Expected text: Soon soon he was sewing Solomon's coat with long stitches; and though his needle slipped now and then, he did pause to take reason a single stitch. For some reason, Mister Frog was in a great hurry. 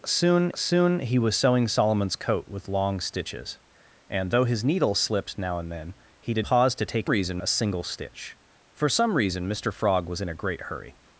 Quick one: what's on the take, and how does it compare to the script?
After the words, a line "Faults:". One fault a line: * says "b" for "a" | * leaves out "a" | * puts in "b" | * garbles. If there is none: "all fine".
Soon soon he was sewing Solomon's coat with long stitches; and though his needle slipped now and then, he did pause to take reason a single stitch. For some reason, Mister Frog was in a great hurry.
Faults:
all fine